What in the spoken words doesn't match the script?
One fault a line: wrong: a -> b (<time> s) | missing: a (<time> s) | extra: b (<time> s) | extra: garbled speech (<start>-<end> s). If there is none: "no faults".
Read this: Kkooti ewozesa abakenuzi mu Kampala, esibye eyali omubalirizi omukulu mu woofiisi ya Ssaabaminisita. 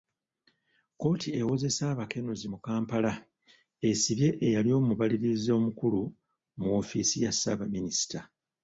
no faults